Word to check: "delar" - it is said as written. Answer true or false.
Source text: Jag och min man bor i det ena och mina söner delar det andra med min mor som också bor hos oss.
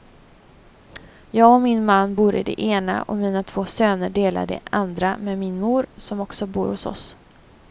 true